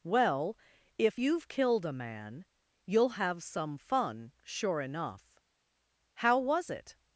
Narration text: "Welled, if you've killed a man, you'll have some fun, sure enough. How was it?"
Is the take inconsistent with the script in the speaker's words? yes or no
yes